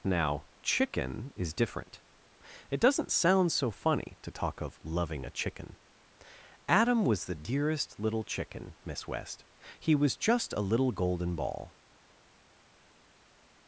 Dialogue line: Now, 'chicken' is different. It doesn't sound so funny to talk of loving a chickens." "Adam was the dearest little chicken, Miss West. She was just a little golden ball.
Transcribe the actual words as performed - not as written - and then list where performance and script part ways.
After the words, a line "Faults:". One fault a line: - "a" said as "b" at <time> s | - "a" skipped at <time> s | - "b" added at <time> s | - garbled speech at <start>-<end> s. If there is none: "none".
Now, 'chicken' is different. It doesn't sound so funny to talk of loving a chicken." "Adam was the dearest little chicken, Miss West. He was just a little golden ball.
Faults:
- "chickens" said as "chicken" at 5.3 s
- "She" said as "He" at 9.8 s